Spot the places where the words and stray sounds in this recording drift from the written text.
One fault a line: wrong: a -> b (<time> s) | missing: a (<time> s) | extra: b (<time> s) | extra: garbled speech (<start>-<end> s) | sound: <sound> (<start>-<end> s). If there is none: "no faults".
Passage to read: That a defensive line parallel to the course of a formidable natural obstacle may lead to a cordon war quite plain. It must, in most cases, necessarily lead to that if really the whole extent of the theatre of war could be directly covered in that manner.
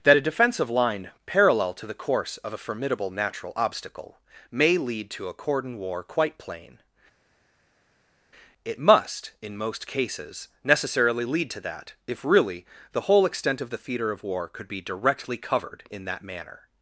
no faults